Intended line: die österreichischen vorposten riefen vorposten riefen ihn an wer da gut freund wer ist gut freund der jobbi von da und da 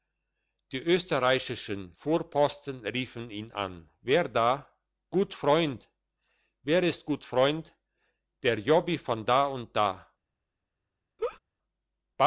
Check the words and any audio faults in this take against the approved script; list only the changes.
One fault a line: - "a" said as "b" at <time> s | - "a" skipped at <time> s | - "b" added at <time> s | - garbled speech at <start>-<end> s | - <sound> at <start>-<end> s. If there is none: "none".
- "vorposten riefen" skipped at 3.3 s
- laugh at 11.2-11.4 s